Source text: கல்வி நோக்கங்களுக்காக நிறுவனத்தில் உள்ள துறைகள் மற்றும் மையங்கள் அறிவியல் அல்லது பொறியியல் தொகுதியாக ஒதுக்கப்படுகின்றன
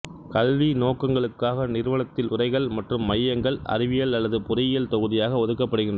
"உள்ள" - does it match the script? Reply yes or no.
no